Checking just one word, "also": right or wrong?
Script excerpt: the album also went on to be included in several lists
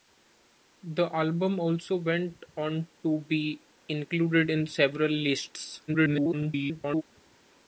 right